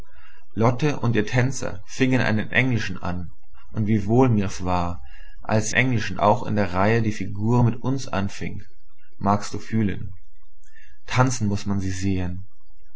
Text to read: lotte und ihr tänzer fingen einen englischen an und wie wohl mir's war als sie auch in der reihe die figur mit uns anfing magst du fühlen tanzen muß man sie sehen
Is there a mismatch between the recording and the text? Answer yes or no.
yes